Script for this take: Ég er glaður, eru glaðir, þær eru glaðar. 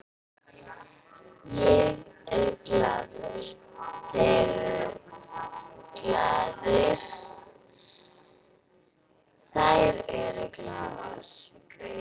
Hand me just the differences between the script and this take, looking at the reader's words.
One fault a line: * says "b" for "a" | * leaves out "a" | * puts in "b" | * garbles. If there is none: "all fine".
* puts in "þeir"